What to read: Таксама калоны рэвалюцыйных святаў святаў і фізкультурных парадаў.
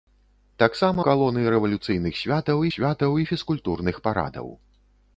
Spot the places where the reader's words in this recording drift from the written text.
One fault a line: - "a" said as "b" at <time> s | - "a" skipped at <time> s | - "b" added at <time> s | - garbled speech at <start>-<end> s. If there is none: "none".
none